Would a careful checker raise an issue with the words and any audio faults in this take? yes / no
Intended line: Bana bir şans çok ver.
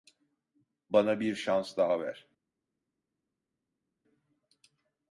yes